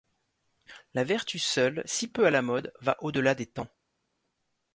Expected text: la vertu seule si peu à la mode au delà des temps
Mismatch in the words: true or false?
true